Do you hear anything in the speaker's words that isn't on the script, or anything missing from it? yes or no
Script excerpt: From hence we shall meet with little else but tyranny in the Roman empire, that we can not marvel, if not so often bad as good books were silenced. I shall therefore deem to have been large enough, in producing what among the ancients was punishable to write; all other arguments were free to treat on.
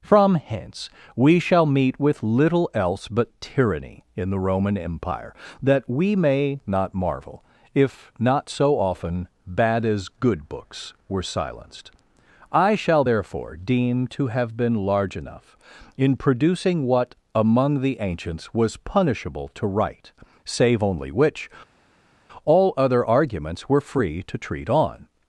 yes